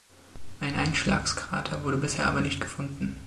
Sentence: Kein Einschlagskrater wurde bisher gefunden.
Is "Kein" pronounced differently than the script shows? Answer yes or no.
yes